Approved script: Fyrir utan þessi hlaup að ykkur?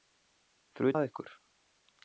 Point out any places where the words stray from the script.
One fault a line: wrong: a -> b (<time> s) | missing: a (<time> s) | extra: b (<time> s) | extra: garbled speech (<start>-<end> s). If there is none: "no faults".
missing: utan þessi hlaup (0.9 s)